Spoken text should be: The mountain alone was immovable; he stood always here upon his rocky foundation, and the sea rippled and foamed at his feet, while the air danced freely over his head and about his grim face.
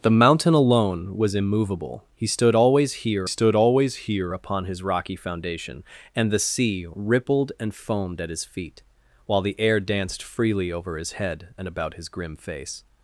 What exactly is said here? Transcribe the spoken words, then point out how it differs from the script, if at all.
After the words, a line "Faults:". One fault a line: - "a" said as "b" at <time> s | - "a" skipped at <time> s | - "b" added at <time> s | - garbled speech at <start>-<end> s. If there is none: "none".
The mountain alone was immovable; he stood always here stood always here upon his rocky foundation, and the sea rippled and foamed at his feet, while the air danced freely over his head and about his grim face.
Faults:
- "stood always here" added at 3.2 s